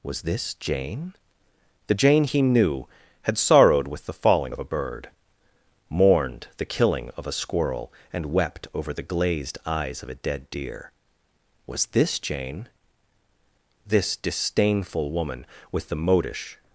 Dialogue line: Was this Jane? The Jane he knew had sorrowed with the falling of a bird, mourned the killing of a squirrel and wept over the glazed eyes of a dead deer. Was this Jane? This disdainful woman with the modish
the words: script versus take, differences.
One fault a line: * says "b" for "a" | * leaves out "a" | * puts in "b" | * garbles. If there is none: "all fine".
all fine